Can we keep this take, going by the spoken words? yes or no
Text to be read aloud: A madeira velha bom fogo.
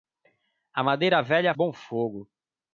yes